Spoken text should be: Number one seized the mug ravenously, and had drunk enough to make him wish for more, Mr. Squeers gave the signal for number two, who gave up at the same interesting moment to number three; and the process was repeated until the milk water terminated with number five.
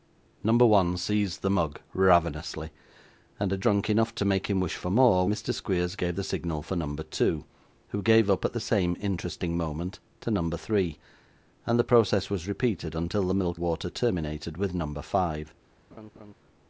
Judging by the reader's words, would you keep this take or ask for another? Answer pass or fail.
pass